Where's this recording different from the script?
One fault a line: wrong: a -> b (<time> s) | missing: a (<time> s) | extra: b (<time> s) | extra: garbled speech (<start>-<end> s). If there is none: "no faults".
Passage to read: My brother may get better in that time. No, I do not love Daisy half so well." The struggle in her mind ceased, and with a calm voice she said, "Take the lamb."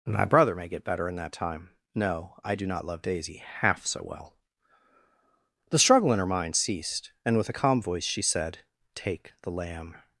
no faults